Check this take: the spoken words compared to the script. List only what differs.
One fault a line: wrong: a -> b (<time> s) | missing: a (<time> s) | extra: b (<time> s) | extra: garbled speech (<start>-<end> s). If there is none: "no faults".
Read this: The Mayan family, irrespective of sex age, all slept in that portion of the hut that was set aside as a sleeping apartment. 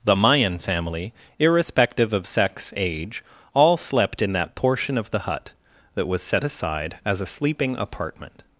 no faults